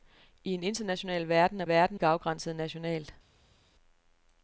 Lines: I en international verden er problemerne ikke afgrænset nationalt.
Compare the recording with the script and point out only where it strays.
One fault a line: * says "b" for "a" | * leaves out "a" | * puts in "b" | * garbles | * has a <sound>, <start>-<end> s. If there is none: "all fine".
* says "verden" for "problemerne"